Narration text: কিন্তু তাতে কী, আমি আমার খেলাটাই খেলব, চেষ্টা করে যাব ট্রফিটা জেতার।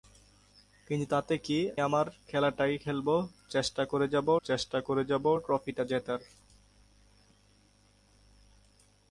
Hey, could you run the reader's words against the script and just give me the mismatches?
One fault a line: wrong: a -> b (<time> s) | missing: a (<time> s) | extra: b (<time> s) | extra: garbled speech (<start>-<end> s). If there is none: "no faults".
missing: আমি (1.6 s)
extra: চেষ্টা করে যাব (4.4 s)